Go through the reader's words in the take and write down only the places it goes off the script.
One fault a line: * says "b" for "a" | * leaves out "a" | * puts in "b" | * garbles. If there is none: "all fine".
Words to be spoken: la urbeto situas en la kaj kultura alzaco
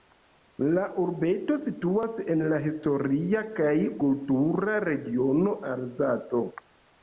* puts in "historia"
* puts in "regiono"